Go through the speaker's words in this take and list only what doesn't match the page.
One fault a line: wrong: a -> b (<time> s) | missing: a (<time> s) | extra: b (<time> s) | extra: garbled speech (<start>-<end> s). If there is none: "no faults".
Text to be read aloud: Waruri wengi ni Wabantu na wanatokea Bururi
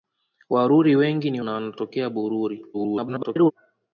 missing: Wabantu (1.4 s)
extra: garbled speech (2.7-3.5 s)